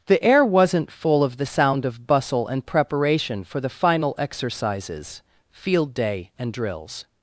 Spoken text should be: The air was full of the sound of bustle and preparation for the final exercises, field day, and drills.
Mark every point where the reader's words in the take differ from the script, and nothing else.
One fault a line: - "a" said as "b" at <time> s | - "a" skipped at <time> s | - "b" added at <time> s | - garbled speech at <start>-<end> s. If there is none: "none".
- "was" said as "wasn't" at 0.4 s